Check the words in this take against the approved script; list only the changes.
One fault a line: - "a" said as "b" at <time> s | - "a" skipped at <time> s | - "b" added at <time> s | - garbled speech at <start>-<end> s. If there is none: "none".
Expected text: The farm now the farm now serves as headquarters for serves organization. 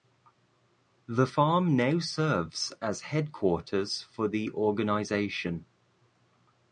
- "the farm now" skipped at 2.0 s
- "serves" said as "the" at 4.3 s